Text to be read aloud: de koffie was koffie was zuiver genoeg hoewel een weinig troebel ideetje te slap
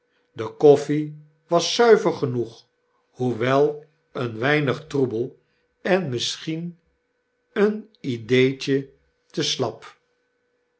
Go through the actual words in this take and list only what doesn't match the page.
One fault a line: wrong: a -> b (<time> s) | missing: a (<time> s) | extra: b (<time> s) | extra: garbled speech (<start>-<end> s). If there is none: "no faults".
missing: koffie was (1.8 s)
extra: en misschien een (5.8 s)